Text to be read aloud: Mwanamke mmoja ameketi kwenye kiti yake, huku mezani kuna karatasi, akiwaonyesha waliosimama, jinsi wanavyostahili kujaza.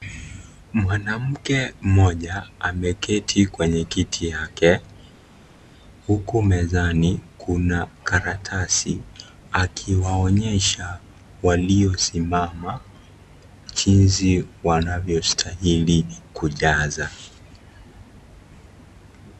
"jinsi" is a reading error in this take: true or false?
false